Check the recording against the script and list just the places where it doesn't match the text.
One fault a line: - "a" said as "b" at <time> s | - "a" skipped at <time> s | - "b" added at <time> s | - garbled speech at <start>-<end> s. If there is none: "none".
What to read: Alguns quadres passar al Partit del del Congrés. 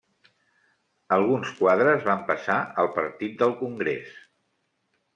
- "van" added at 2.1 s
- "del" skipped at 3.6 s